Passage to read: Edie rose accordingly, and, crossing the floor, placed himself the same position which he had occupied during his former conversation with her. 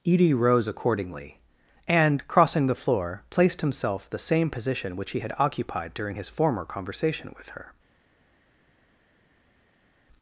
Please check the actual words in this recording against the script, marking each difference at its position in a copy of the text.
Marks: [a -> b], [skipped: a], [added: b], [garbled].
Edie rose accordingly, and, crossing the floor, placed himself the same position which he had occupied during his former conversation with her.